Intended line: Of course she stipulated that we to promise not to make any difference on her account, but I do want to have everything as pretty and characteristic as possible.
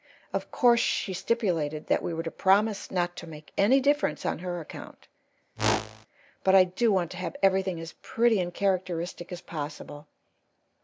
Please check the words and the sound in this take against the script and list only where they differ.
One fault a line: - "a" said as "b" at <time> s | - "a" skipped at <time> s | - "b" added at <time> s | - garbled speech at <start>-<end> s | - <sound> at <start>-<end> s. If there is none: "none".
- "were" added at 2.1 s
- whoosh at 5.6-6.1 s